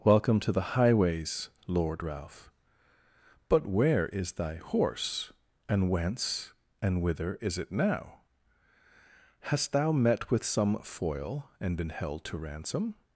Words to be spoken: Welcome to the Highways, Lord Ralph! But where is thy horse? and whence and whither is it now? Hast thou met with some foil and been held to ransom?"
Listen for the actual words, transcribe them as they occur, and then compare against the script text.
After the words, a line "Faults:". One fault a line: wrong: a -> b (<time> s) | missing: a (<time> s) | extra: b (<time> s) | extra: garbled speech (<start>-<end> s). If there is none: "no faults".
Welcome to the Highways, Lord Ralph! But where is thy horse? and whence and whither is it now? Hast thou met with some foil and been held to ransom?"
Faults:
no faults